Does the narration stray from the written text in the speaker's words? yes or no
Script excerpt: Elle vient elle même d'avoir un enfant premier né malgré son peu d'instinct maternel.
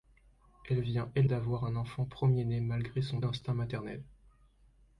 yes